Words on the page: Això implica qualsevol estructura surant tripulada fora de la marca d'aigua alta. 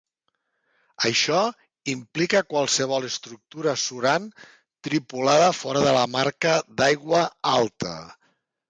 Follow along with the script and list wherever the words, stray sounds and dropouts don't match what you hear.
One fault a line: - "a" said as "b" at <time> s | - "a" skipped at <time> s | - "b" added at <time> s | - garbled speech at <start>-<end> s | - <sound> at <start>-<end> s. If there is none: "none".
none